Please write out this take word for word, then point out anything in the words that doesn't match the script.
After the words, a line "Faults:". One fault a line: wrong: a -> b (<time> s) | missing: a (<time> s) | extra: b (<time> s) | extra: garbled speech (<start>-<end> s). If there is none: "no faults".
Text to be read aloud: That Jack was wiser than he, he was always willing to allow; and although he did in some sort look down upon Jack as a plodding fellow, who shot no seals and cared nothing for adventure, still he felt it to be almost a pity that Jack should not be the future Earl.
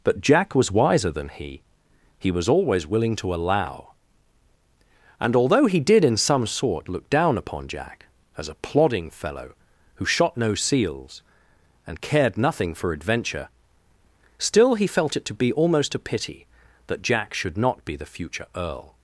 But Jack was wiser than he, he was always willing to allow; and although he did in some sort look down upon Jack as a plodding fellow, who shot no seals and cared nothing for adventure, still he felt it to be almost a pity that Jack should not be the future Earl.
Faults:
wrong: That -> But (0.0 s)